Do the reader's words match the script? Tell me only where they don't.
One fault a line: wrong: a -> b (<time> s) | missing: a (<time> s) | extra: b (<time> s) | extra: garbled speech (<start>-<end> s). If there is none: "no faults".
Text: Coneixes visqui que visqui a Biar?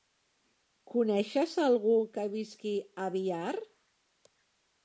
wrong: visqui -> algú (1.6 s)